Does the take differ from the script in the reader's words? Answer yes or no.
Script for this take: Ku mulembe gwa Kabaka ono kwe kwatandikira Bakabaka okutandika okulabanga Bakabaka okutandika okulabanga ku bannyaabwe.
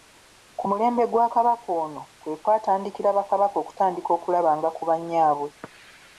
yes